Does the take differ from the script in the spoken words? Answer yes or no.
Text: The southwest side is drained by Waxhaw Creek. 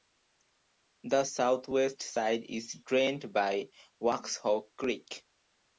no